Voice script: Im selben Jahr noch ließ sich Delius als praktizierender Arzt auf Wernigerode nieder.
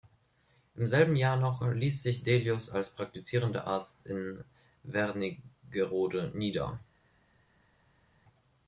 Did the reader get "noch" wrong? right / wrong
right